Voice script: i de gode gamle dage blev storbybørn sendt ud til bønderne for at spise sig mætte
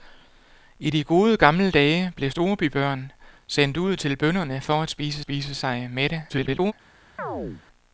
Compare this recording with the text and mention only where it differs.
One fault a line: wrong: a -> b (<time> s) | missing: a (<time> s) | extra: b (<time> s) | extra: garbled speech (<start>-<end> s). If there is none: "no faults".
extra: spise (5.2 s)
extra: garbled speech (6.3-6.7 s)